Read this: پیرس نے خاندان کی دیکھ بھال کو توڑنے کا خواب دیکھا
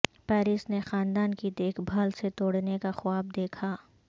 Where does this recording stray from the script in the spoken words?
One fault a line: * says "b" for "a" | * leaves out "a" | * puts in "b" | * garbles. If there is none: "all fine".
* says "سے" for "کو"